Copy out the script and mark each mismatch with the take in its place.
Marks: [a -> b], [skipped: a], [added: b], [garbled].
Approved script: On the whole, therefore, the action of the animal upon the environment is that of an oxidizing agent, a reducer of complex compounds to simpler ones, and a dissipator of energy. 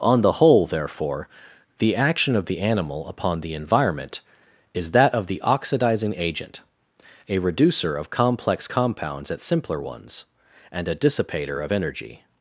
On the whole, therefore, the action of the animal upon the environment is that of [an -> the] oxidizing agent, a reducer of complex compounds [to -> at] simpler ones, and a dissipator of energy.